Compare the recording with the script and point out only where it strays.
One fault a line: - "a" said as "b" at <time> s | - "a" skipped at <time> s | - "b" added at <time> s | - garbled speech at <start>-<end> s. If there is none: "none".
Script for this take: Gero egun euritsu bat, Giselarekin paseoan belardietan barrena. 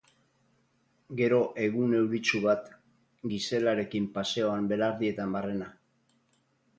none